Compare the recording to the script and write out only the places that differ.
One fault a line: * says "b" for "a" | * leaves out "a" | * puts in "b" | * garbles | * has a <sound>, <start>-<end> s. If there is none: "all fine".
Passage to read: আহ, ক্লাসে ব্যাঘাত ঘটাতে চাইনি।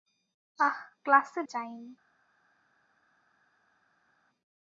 * leaves out "ব্যাঘাত ঘটাতে"